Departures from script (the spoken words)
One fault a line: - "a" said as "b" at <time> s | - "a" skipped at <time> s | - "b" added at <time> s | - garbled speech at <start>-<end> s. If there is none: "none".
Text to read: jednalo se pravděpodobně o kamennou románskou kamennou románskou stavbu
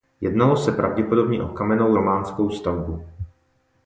- "kamennou románskou" skipped at 2.5 s